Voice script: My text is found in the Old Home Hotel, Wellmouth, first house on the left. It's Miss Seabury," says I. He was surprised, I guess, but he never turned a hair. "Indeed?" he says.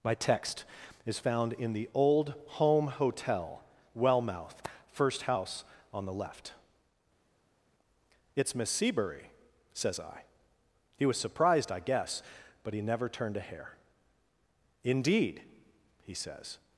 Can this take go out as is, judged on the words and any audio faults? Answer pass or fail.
pass